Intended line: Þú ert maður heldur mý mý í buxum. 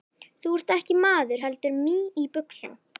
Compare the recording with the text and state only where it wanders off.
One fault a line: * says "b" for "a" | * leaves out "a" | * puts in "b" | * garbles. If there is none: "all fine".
* puts in "ekki"
* leaves out "mý"